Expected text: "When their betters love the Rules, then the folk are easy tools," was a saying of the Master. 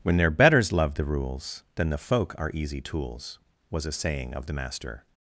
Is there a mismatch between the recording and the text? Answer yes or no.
no